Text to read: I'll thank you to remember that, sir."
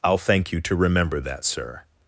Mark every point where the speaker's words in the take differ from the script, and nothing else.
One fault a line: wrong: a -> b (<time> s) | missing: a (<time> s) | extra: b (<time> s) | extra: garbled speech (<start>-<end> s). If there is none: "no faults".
no faults